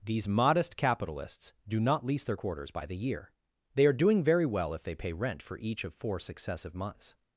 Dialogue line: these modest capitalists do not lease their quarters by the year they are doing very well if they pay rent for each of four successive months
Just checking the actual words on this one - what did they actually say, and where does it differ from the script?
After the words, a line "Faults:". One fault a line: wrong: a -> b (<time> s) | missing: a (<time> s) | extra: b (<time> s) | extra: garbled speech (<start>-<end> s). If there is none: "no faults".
these modest capitalists do not lease their quarters by the year they are doing very well if they pay rent for each of four successive months
Faults:
no faults